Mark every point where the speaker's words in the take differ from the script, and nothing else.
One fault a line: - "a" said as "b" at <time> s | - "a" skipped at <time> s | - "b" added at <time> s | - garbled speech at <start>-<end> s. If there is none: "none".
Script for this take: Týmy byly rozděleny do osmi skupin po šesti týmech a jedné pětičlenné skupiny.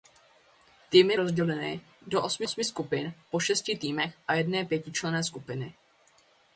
- "byly" skipped at 1.2 s
- "osmi" added at 2.4 s